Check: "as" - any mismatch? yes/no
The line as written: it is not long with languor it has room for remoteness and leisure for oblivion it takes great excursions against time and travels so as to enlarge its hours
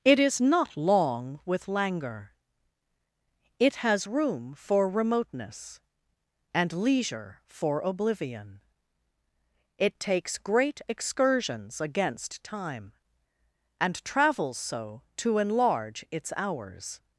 yes